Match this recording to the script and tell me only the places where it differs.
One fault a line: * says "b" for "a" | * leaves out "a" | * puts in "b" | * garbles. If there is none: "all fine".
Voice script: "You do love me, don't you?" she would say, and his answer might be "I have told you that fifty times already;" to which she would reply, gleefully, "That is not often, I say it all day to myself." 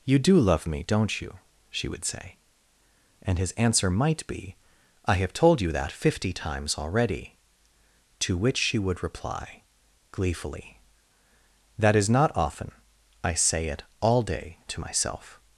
all fine